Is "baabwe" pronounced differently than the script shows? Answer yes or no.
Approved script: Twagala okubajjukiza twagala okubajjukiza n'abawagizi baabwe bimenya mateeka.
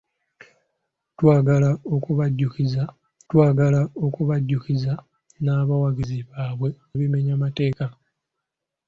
no